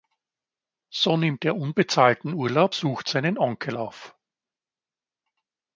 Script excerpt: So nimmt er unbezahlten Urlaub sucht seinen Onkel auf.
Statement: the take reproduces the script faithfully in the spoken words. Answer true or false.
true